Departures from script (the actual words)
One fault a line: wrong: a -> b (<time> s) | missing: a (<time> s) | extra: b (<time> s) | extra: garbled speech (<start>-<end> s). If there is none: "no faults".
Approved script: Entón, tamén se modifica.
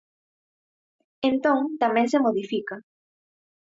no faults